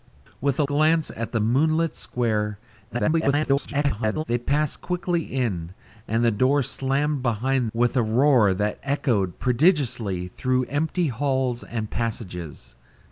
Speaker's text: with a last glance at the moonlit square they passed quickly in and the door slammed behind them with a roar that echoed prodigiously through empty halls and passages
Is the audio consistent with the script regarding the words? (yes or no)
no